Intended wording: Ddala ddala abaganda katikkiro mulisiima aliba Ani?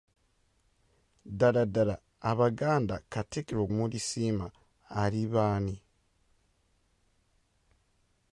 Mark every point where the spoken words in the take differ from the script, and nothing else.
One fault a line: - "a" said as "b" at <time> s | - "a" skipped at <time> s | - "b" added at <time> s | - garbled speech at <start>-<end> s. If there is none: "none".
none